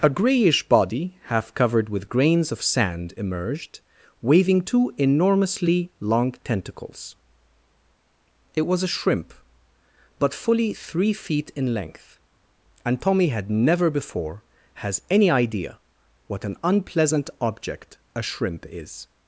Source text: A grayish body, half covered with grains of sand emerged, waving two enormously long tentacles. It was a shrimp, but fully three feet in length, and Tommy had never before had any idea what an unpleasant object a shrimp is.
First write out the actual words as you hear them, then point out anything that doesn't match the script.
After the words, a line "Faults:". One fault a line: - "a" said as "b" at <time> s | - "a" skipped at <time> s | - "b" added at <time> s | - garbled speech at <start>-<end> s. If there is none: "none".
A grayish body, half covered with grains of sand emerged, waving two enormously long tentacles. It was a shrimp, but fully three feet in length, and Tommy had never before has any idea what an unpleasant object a shrimp is.
Faults:
- "had" said as "has" at 14.7 s